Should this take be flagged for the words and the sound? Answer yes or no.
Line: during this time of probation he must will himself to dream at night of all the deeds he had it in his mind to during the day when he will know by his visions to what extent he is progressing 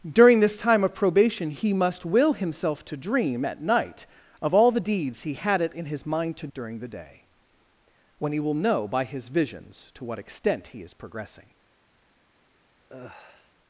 yes